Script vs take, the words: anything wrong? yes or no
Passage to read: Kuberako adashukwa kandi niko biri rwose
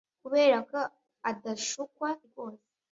yes